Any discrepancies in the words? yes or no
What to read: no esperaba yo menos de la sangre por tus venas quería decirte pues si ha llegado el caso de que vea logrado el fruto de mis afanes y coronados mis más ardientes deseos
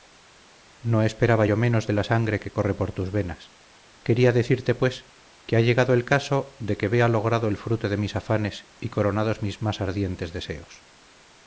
yes